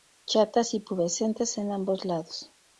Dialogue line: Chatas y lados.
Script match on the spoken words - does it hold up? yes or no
no